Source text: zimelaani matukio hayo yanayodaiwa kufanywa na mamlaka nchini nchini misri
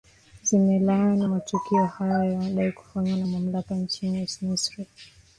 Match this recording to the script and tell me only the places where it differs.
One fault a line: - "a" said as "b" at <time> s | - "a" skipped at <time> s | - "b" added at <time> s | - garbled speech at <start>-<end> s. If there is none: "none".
- "nchini" skipped at 4.3 s